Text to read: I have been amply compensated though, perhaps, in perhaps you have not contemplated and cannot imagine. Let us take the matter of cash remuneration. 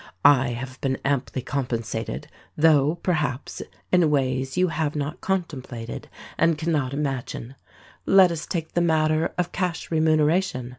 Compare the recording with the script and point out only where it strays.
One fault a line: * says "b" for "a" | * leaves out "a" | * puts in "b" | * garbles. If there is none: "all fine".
* says "ways" for "perhaps"